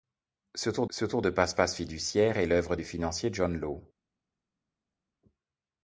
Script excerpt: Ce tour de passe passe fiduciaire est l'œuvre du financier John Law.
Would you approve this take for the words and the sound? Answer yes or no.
no